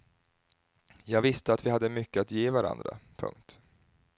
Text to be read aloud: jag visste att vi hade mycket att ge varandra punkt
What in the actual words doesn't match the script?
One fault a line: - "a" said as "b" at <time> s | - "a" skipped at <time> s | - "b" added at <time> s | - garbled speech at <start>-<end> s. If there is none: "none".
none